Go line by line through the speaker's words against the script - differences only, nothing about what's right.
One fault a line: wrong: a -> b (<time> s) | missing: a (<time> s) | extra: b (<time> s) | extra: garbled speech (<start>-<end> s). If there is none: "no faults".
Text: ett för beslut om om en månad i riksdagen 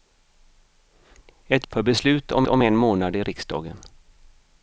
no faults